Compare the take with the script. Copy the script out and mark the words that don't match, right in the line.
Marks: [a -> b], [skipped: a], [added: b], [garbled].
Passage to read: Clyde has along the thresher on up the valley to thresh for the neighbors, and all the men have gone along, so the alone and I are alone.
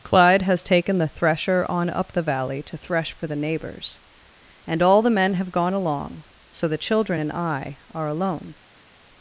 Clyde has [along -> taken] the thresher on up the valley to thresh for the neighbors, and all the men have gone along, so the [alone -> children] and I are alone.